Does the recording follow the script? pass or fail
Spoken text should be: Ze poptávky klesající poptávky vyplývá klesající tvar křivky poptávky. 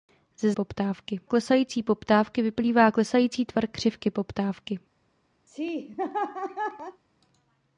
pass